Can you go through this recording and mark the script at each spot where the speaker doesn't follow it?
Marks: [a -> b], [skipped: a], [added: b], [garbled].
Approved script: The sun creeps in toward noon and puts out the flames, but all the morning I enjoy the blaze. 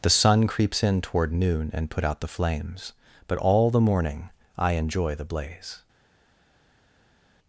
The sun creeps in toward noon and [puts -> put] out the flames, but all the morning I enjoy the blaze.